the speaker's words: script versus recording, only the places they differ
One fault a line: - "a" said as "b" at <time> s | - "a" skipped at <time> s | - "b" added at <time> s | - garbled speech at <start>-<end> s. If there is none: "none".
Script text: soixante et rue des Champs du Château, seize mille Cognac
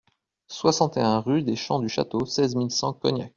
- "un" added at 1.0 s
- "cent" added at 2.7 s